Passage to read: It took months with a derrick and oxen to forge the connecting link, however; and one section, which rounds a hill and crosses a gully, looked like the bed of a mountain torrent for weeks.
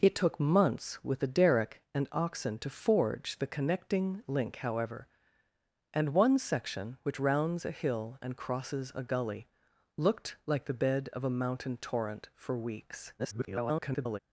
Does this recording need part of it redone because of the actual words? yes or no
yes